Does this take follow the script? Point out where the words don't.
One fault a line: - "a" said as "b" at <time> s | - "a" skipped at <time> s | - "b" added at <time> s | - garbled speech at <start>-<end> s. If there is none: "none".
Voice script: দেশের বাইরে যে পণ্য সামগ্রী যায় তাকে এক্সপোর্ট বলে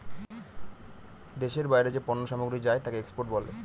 none